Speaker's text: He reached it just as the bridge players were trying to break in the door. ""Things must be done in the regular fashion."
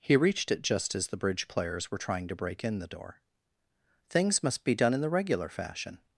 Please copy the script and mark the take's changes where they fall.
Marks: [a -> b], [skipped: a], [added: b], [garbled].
He reached it just as the bridge players were trying to break in the door. ""Things must be done in the regular fashion."